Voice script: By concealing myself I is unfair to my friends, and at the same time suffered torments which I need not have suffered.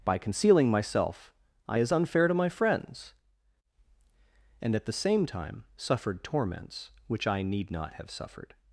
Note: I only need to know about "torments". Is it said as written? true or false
true